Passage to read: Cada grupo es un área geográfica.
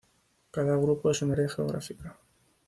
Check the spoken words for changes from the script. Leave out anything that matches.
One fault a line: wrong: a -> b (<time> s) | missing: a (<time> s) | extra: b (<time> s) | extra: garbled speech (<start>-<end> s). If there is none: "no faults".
no faults